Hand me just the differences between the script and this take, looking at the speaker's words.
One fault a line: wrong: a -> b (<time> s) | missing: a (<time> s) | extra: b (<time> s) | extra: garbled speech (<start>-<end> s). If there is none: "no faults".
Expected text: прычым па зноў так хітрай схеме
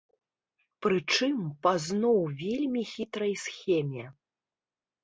wrong: так -> вельмі (2.4 s)